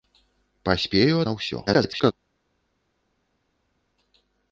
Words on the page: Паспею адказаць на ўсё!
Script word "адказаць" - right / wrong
wrong